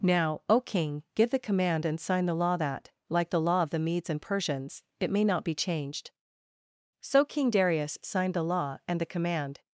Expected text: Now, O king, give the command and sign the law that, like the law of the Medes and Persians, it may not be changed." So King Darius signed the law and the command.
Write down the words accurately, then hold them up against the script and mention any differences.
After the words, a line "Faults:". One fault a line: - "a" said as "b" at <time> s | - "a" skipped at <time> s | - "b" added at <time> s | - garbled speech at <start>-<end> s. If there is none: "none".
Now, O king, give the command and sign the law that, like the law of the Medes and Persians, it may not be changed." So King Darius signed the law and the command.
Faults:
none